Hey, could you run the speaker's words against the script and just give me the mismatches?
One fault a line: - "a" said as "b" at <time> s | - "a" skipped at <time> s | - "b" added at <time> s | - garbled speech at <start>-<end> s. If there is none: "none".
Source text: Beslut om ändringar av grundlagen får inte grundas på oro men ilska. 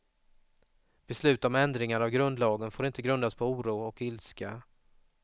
- "men" said as "och" at 3.8 s